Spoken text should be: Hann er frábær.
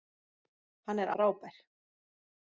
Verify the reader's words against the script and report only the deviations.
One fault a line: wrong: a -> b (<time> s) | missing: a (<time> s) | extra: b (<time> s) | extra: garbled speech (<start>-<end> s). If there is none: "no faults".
no faults